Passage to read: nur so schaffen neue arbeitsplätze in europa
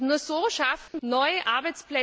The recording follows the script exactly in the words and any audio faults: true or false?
false